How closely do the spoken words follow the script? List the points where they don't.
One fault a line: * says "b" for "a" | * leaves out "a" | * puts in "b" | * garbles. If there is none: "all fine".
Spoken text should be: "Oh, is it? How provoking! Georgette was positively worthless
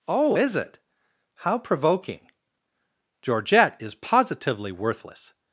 * says "is" for "was"